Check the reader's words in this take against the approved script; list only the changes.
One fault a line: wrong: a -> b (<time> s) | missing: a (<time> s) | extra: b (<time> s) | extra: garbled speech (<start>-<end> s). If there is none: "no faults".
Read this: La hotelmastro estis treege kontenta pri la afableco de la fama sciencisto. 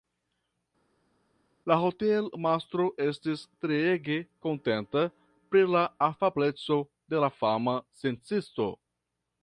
no faults